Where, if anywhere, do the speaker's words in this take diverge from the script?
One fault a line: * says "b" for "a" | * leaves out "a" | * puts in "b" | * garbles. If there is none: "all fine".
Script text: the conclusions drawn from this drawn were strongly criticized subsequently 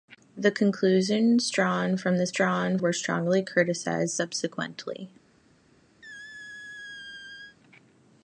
all fine